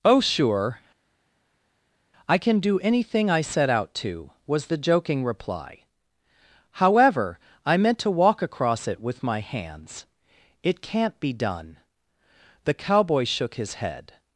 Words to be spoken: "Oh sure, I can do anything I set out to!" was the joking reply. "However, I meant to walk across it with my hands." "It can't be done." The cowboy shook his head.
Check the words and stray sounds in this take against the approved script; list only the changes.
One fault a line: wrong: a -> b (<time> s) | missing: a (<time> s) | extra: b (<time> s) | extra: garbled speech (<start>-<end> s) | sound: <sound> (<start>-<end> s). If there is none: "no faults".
no faults